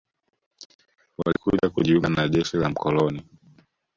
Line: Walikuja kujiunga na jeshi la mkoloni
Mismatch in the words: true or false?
false